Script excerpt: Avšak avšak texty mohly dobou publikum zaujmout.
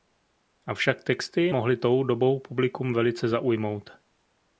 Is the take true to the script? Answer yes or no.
no